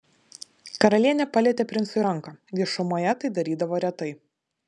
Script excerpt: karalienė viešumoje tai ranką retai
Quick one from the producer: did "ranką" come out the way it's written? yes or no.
no